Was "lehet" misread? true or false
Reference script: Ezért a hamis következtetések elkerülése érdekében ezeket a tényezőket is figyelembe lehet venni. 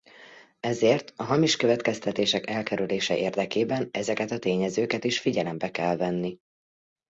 true